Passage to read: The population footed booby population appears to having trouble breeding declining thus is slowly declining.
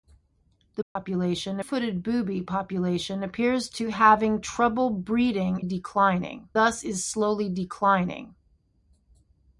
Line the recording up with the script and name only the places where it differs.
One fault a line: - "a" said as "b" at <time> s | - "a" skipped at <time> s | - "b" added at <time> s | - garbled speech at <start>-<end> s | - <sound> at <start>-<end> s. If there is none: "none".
- dropout at 0.8-1.0 s